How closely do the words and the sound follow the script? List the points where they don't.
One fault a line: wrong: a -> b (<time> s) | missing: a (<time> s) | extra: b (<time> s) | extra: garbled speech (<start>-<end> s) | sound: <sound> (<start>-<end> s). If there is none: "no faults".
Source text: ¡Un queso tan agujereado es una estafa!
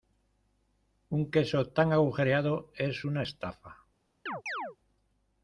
sound: chirp (4.3-4.8 s)